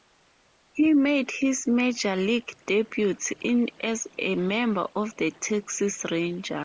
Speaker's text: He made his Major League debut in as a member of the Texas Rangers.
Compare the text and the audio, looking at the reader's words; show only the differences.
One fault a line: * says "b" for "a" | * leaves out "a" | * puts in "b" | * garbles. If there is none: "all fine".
all fine